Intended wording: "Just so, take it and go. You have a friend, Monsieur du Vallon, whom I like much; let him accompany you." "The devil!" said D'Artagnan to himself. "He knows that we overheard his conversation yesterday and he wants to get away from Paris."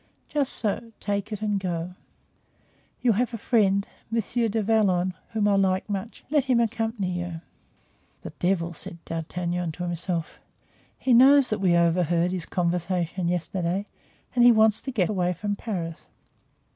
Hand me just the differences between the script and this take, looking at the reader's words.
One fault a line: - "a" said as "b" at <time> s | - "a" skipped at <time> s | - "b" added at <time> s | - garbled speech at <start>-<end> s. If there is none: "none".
none